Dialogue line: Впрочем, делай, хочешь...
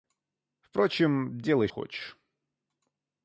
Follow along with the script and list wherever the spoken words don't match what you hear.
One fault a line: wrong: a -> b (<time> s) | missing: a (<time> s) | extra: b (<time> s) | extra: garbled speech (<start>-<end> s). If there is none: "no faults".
no faults